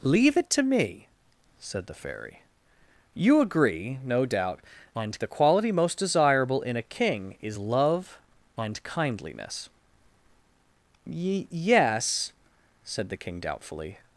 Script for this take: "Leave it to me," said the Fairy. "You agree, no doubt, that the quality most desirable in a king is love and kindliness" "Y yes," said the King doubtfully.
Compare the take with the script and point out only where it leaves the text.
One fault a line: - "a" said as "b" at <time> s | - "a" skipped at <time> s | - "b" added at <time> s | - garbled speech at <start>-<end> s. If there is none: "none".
- "that" said as "and" at 4.9 s